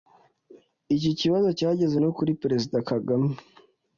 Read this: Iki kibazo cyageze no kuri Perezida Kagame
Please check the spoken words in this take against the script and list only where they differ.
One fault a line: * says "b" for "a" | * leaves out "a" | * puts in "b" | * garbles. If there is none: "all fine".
all fine